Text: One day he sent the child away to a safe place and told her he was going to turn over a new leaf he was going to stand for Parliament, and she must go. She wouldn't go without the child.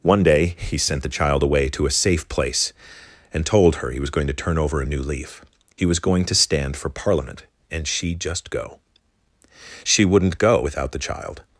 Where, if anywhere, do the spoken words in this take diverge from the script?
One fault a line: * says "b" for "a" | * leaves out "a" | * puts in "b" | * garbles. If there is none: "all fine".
* says "just" for "must"